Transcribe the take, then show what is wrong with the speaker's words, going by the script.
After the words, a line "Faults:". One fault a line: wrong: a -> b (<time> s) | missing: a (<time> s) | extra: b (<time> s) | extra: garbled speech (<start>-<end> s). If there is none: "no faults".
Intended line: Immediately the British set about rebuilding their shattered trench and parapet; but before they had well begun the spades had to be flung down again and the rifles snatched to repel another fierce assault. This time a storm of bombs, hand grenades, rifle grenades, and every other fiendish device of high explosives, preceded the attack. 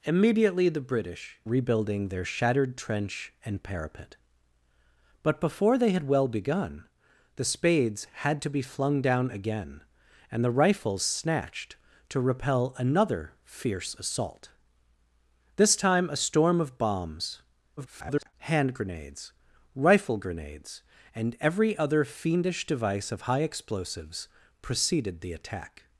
Immediately the British rebuilding their shattered trench and parapet; but before they had well begun the spades had to be flung down again and the rifles snatched to repel another fierce assault. This time a storm of bombs, [garbled] hand grenades, rifle grenades, and every other fiendish device of high explosives, preceded the attack.
Faults:
missing: set about (1.4 s)
extra: garbled speech (17.8-18.3 s)